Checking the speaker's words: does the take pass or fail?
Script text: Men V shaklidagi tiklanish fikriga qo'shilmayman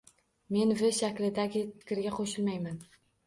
fail